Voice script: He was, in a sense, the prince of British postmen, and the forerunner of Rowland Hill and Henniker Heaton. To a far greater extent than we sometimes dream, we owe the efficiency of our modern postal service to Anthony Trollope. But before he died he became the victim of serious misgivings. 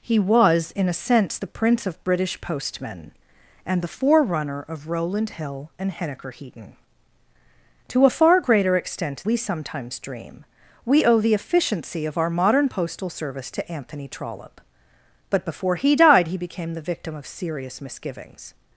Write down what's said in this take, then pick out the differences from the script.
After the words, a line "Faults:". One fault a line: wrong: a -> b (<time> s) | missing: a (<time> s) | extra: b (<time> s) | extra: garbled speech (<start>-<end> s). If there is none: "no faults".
He was, in a sense, the prince of British postmen, and the forerunner of Rowland Hill and Henniker Heaton. To a far greater extent we sometimes dream, we owe the efficiency of our modern postal service to Anthony Trollope. But before he died he became the victim of serious misgivings.
Faults:
missing: than (9.2 s)